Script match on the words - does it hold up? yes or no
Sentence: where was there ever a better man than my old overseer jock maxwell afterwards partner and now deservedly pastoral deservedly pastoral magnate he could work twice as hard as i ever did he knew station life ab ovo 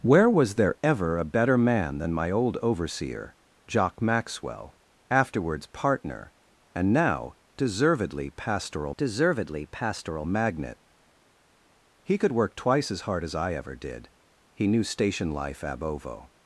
yes